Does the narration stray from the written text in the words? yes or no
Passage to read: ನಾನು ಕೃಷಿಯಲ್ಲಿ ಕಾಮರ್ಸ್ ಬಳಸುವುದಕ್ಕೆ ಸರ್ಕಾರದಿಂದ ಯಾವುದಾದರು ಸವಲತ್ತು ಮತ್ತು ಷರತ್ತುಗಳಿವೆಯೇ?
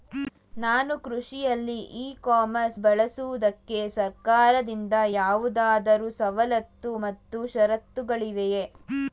yes